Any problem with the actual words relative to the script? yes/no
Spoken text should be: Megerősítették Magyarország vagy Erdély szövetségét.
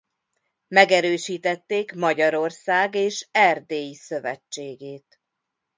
yes